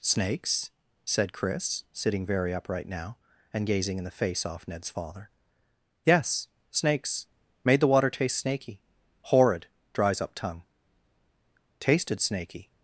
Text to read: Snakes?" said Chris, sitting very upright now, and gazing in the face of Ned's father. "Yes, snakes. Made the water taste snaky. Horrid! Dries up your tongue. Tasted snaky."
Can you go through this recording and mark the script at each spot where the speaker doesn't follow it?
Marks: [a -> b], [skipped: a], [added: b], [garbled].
Snakes?" said Chris, sitting very upright now, and gazing in the face [of -> off] Ned's father. "Yes, snakes. Made the water taste snaky. Horrid! Dries up [skipped: your] tongue. Tasted snaky."